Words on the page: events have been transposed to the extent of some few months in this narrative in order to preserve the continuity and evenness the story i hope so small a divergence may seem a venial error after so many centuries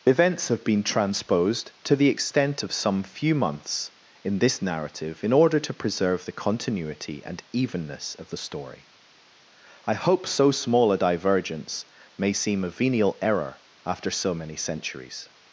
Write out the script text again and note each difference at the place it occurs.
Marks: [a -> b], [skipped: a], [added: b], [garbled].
events have been transposed to the extent of some few months in this narrative in order to preserve the continuity and evenness [added: of] the story i hope so small a divergence may seem a venial error after so many centuries